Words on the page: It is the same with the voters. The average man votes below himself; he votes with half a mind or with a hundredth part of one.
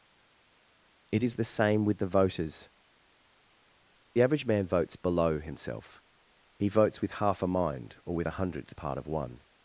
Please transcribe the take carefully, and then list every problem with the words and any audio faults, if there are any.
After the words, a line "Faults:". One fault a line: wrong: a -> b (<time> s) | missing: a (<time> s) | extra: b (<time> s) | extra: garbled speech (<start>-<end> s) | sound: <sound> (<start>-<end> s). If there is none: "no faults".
It is the same with the voters. The average man votes below himself; he votes with half a mind or with a hundredth part of one.
Faults:
no faults